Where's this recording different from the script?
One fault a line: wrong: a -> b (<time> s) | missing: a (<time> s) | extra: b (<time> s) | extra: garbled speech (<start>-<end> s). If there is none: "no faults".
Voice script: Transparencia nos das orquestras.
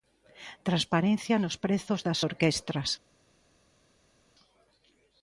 extra: prezos (1.6 s)